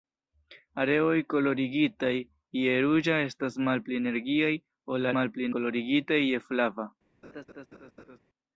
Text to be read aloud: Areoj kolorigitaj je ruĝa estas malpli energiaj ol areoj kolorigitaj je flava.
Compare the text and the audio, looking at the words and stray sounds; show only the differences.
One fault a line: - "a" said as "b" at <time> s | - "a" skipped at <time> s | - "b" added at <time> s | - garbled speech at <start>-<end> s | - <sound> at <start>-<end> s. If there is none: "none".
- "areoj" said as "malpli" at 5.2 s
- laugh at 7.2-8.2 s